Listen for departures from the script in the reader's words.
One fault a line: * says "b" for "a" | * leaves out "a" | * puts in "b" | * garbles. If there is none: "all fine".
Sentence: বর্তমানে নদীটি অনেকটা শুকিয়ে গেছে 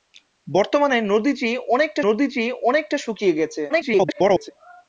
* puts in "নদীটি অনেকটা"
* garbles